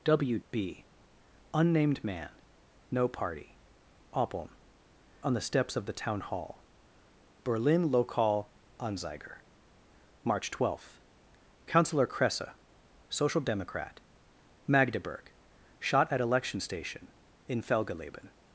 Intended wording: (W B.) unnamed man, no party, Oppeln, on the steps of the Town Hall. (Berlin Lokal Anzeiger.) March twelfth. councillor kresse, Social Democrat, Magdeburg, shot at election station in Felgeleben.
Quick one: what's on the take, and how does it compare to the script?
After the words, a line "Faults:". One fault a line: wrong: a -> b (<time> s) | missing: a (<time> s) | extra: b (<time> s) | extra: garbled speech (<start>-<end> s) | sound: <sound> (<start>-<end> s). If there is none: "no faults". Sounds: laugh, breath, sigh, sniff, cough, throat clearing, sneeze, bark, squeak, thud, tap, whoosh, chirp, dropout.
(W B.) unnamed man, no party, Oppeln, on the steps of the Town Hall. (Berlin Lokal Anzeiger.) March twelfth. councillor kresse, Social Democrat, Magdeburg, shot at election station in Felgeleben.
Faults:
no faults